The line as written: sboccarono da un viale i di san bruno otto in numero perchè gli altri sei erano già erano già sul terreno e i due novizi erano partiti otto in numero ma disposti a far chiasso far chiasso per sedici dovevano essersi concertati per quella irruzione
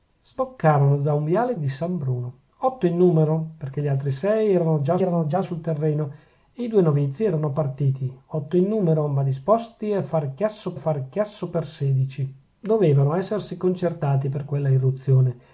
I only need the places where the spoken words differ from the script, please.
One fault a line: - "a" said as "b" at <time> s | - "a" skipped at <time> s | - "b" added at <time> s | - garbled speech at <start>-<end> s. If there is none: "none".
none